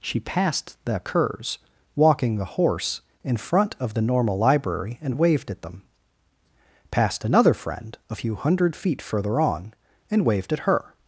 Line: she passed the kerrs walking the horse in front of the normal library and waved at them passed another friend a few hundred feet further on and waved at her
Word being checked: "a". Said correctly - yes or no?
yes